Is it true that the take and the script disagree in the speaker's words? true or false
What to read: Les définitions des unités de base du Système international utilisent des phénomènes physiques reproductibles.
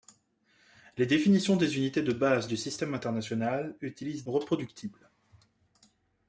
true